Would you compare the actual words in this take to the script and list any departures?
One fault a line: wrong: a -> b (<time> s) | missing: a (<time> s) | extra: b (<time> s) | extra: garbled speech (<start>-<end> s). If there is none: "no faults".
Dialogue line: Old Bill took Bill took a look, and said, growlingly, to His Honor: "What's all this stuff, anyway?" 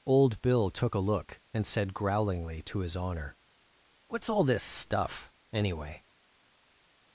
missing: Bill took (0.9 s)